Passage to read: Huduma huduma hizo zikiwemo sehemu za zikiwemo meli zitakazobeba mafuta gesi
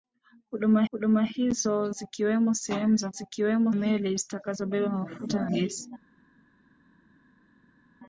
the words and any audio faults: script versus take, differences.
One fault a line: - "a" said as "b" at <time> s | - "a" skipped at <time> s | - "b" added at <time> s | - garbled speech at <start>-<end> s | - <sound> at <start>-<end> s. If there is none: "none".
none